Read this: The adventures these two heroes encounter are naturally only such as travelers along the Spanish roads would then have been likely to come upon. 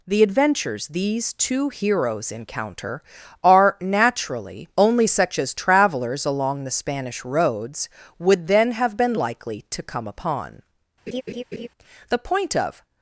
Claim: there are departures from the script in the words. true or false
true